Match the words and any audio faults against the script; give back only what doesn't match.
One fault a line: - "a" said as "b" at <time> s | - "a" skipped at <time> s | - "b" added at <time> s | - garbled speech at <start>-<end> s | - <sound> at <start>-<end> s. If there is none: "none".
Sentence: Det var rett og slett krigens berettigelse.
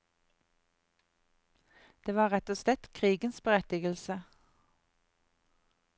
none